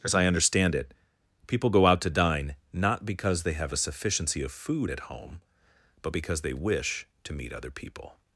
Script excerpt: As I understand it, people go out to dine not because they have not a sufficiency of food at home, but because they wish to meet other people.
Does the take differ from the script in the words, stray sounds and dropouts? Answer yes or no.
yes